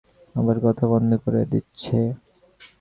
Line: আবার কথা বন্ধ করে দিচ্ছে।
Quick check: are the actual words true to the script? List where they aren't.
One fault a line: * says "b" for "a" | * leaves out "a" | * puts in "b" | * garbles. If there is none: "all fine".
all fine